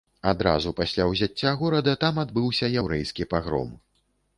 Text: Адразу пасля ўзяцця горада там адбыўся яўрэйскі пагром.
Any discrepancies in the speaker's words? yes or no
no